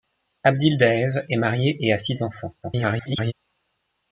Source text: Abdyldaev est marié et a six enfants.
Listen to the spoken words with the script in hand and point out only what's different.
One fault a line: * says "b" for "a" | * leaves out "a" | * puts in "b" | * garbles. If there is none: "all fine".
* garbles